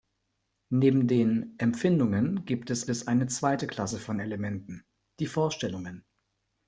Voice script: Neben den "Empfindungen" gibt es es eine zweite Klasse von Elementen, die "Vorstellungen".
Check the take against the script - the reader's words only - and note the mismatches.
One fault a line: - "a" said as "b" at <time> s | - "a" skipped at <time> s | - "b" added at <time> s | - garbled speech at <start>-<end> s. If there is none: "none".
none